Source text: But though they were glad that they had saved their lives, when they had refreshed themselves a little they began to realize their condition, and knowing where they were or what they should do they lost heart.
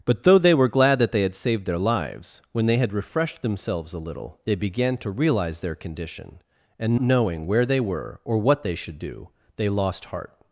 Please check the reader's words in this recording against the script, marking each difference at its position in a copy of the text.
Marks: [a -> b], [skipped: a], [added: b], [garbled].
But though they were glad that they had saved their lives, when they had refreshed themselves a little they began to realize their condition, and knowing where they were or what they should do they lost heart.